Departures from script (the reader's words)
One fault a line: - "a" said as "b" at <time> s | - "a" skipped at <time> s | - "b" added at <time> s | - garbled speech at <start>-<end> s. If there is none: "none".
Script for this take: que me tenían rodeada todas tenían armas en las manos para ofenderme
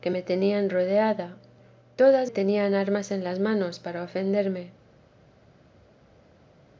none